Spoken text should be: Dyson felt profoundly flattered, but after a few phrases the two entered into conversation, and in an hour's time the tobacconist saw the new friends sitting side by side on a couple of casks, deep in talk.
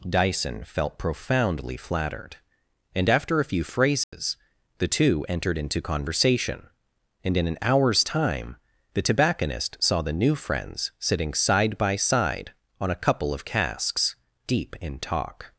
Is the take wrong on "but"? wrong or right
wrong